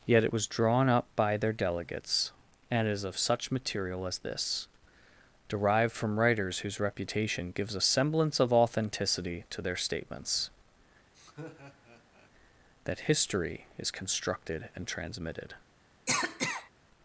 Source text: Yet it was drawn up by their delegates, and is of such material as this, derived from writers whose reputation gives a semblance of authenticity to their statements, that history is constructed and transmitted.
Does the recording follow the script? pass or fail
pass